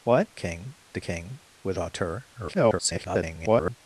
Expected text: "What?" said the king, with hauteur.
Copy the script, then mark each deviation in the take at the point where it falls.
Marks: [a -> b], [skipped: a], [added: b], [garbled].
"What?" [said -> king] the king, with hauteur. [garbled]